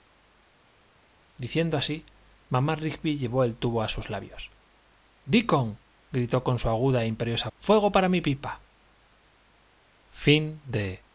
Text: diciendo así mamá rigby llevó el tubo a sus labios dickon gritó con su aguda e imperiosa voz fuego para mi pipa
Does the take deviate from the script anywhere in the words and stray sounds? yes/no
yes